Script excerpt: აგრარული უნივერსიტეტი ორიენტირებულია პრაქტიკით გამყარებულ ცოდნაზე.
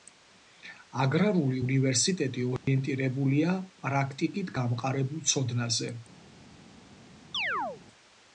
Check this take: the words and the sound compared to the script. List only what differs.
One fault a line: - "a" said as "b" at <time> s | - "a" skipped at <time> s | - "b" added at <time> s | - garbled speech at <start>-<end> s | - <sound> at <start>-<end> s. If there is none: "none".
- dropout at 2.6-2.7 s
- chirp at 7.3-7.8 s